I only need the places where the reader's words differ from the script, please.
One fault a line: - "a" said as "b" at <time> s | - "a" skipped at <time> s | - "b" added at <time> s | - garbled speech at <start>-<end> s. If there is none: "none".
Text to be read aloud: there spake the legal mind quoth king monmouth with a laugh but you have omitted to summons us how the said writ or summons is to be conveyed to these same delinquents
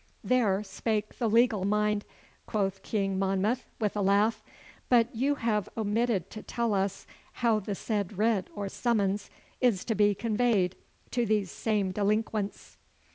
- "summons" said as "tell" at 6.4 s